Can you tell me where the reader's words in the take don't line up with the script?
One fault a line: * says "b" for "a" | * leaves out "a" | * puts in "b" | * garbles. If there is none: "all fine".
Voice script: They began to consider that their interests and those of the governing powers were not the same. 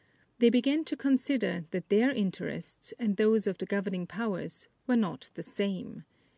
all fine